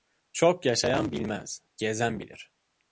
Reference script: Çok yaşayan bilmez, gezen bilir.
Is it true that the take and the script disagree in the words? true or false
false